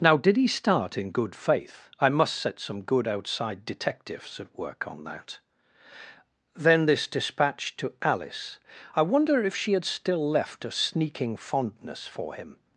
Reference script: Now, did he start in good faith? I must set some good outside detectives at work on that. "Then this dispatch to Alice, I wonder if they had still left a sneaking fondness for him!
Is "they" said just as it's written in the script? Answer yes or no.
no